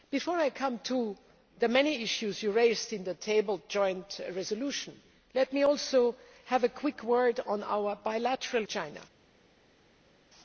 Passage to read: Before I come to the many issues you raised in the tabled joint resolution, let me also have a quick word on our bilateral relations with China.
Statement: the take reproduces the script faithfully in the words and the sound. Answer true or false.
false